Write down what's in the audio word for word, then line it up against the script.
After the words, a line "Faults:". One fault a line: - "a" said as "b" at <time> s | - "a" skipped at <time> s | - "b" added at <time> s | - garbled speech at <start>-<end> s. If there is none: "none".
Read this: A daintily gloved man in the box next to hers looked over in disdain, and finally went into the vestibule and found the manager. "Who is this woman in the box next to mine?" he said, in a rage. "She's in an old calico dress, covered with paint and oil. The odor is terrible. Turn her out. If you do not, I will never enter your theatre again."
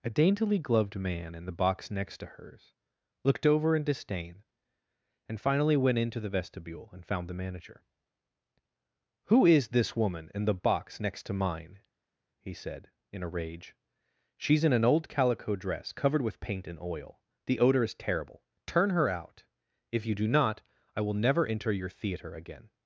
A daintily gloved man in the box next to hers looked over in disdain, and finally went into the vestibule and found the manager. "Who is this woman in the box next to mine?" he said, in a rage. "She's in an old calico dress, covered with paint and oil. The odor is terrible. Turn her out. If you do not, I will never enter your theatre again."
Faults:
none